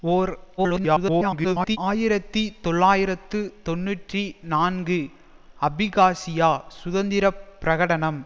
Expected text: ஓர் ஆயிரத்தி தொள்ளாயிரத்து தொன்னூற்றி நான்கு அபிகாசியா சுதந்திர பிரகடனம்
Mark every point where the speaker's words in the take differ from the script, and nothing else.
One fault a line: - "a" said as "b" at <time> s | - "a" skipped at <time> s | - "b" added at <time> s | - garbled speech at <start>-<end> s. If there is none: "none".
- garbled speech at 0.6-1.8 s